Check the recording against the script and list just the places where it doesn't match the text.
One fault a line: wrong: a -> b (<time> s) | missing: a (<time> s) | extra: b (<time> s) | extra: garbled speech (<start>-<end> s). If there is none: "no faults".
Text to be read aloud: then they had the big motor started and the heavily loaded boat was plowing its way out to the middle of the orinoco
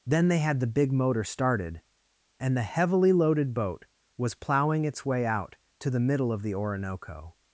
no faults